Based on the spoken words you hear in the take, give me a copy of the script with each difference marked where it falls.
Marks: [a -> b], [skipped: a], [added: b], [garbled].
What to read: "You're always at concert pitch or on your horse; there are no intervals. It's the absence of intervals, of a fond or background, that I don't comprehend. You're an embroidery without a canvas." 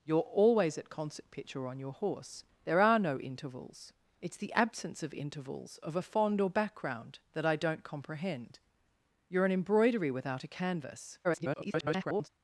"You're always at concert pitch or on your horse; there are no intervals. It's the absence of intervals, of a fond or background, that I don't comprehend. You're an embroidery without a canvas." [garbled]